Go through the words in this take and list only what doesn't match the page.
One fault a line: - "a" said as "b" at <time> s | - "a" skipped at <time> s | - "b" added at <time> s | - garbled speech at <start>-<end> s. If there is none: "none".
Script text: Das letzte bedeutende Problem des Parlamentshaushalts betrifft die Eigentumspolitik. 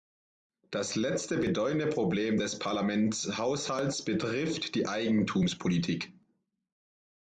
none